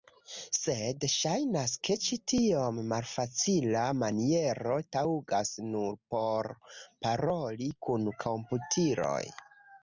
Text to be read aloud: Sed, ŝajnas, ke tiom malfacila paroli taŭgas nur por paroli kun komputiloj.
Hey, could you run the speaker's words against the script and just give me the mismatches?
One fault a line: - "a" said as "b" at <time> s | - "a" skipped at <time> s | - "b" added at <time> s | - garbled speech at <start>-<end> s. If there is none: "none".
- "ĉi" added at 2.0 s
- "paroli" said as "maniero" at 4.0 s